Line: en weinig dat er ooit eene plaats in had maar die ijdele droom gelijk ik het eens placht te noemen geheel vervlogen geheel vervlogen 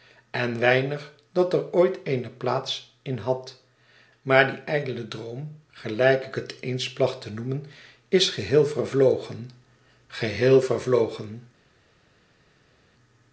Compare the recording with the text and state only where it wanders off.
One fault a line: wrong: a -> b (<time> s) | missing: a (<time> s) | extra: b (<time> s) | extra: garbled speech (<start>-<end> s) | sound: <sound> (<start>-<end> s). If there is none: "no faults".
extra: is (8.1 s)